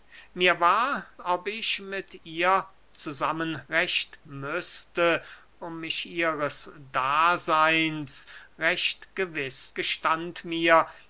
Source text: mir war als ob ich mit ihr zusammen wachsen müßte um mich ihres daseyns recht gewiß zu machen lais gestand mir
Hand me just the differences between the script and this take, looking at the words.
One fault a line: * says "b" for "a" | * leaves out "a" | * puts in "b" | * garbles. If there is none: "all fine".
* leaves out "als"
* says "recht" for "wachsen"
* leaves out "zu machen lais"